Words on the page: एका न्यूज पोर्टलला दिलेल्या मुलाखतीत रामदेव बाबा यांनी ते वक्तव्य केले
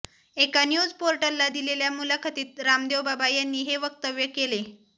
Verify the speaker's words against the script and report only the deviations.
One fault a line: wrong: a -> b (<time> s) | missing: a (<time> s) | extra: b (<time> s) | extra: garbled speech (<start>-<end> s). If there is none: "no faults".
wrong: ते -> हे (3.6 s)